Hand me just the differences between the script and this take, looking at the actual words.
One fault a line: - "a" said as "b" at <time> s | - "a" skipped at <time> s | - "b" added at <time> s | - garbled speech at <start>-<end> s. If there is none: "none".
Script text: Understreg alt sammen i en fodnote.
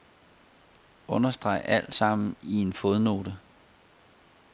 none